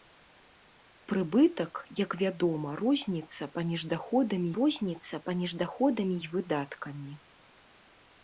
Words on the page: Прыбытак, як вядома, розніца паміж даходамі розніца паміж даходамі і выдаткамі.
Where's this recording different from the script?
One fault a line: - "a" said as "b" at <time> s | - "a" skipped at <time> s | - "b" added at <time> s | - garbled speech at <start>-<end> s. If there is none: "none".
none